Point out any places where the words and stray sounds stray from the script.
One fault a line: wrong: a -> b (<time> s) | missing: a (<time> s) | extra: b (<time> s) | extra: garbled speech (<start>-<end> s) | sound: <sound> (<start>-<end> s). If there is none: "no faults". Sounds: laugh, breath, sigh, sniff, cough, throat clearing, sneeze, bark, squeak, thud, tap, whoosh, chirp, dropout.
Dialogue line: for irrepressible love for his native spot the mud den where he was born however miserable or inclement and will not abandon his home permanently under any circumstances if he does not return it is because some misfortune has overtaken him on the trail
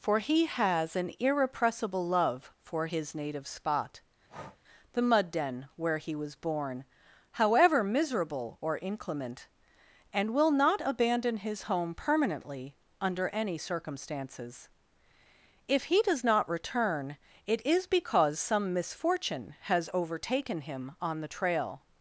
extra: he has an (0.2 s)
sound: breath (4.3-4.6 s)